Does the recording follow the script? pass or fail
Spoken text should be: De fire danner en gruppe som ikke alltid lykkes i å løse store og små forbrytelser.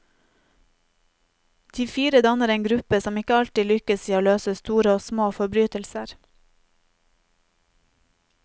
pass